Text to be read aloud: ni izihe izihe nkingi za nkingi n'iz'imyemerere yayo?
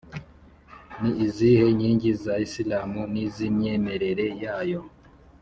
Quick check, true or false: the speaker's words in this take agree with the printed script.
false